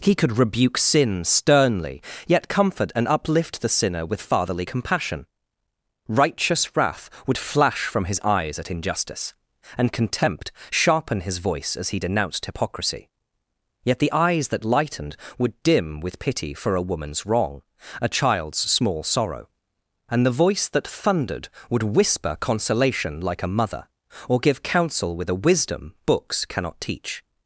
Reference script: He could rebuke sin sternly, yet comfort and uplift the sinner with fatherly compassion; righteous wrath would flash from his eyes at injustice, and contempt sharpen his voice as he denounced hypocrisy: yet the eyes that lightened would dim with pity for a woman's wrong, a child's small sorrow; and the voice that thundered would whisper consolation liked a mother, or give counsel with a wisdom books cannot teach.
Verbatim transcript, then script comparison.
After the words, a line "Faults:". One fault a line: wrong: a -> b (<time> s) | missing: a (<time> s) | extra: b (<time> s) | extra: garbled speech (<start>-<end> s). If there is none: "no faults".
He could rebuke sin sternly, yet comfort and uplift the sinner with fatherly compassion; righteous wrath would flash from his eyes at injustice, and contempt sharpen his voice as he denounced hypocrisy: yet the eyes that lightened would dim with pity for a woman's wrong, a child's small sorrow; and the voice that thundered would whisper consolation like a mother, or give counsel with a wisdom books cannot teach.
Faults:
wrong: liked -> like (23.2 s)